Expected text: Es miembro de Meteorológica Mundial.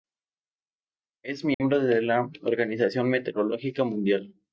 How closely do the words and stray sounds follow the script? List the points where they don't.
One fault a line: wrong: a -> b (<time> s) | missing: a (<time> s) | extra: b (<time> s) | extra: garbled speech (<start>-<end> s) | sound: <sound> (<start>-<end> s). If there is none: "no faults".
sound: dropout (1.5-1.6 s)
extra: la Organización (2.0 s)